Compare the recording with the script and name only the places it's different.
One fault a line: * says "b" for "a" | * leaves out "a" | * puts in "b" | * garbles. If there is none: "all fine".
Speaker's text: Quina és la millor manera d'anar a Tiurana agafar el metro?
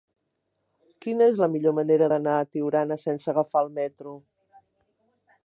* puts in "sense"